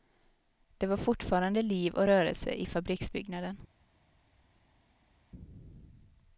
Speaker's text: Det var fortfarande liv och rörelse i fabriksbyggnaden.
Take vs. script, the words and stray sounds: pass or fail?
pass